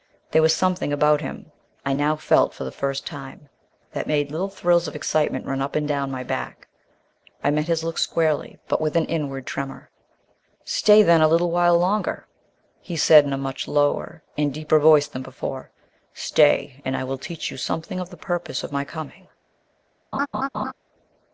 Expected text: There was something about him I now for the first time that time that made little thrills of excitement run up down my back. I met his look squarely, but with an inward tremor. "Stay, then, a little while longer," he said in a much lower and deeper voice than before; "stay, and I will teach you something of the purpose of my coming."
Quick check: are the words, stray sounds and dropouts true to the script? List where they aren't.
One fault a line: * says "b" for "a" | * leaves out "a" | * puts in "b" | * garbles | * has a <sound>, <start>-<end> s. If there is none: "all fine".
* puts in "felt"
* leaves out "time that"
* puts in "and"
* has a laugh, 20.1-20.7 s